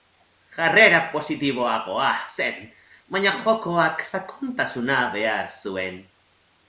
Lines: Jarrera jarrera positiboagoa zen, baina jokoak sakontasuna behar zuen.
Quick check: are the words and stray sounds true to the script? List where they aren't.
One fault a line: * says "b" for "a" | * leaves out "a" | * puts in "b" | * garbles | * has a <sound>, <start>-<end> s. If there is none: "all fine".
* leaves out "jarrera"